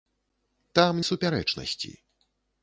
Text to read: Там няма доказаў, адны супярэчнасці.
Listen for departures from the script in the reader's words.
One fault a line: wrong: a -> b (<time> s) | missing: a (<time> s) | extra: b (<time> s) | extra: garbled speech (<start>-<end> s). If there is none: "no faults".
missing: няма доказаў адны (1.0 s)